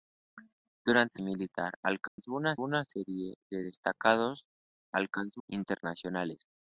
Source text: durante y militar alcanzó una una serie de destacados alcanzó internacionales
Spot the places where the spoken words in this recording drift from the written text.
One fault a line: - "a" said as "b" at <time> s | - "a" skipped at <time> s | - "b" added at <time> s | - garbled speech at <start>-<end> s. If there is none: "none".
none